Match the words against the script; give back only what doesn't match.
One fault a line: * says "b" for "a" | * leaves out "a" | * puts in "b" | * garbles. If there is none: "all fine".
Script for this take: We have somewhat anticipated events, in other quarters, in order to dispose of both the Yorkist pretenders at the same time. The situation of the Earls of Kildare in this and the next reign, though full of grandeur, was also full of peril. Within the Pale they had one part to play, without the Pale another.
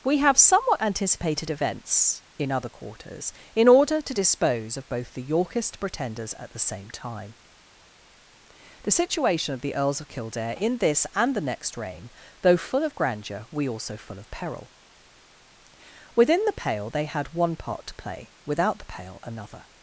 * says "we" for "was"